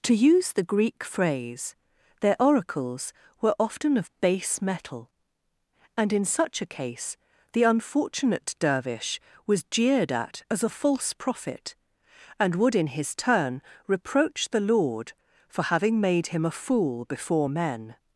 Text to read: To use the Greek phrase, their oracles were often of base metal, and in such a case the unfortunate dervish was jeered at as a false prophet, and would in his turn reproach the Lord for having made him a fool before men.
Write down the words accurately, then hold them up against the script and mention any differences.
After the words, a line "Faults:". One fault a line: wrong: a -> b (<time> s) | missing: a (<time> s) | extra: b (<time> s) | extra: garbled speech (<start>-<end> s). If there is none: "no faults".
To use the Greek phrase, their oracles were often of base metal, and in such a case the unfortunate dervish was jeered at as a false prophet, and would in his turn reproach the Lord for having made him a fool before men.
Faults:
no faults